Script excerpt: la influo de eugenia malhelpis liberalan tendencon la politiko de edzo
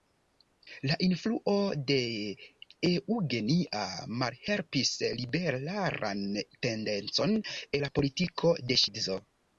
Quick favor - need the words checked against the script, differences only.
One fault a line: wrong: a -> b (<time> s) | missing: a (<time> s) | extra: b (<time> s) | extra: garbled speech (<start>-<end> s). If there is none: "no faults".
no faults